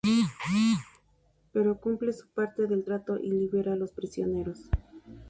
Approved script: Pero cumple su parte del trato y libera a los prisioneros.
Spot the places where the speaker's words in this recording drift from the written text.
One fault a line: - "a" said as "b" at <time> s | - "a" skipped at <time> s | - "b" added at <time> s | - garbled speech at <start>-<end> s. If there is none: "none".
none